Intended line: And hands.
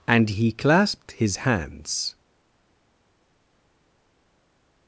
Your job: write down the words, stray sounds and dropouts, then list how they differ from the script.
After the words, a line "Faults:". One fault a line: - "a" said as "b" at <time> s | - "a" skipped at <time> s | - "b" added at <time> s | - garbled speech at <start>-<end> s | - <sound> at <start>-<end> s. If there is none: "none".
And he clasped his hands.
Faults:
- "he clasped his" added at 0.3 s